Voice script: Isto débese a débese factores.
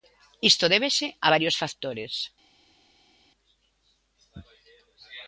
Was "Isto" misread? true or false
false